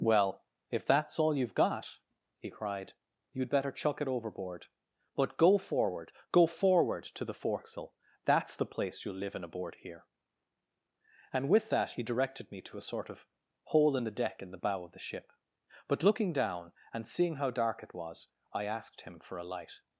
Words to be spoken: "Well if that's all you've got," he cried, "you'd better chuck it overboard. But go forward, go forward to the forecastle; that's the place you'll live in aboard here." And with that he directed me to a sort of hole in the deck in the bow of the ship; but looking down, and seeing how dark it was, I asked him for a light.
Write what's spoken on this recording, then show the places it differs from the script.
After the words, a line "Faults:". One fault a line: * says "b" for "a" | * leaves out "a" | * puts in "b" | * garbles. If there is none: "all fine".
"Well if that's all you've got," he cried, "you'd better chuck it overboard. But go forward, go forward to the forecastle; that's the place you'll live in aboard here." And with that he directed me to a sort of hole in the deck in the bow of the ship; but looking down, and seeing how dark it was, I asked him for a light.
Faults:
all fine